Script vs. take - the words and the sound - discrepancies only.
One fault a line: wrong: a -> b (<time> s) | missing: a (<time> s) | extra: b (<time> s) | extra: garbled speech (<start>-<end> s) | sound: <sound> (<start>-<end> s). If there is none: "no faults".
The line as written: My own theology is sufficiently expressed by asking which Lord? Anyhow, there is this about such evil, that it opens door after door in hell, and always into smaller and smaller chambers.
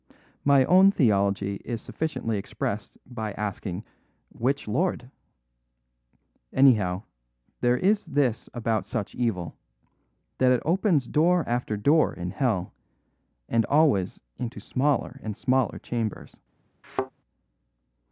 sound: thud (16.8-17.1 s)